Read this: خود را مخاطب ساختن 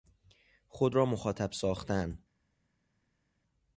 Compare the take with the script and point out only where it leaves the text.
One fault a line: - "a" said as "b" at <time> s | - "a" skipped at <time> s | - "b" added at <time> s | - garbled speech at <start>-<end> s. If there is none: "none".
none